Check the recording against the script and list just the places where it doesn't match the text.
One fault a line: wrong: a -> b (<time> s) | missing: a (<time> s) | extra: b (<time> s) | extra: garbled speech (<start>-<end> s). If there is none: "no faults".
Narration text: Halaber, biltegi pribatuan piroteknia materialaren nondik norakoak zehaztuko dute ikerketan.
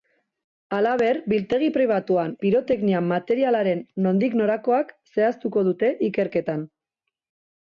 no faults